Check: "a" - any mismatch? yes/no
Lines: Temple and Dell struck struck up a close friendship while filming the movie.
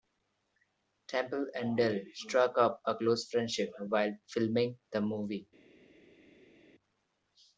no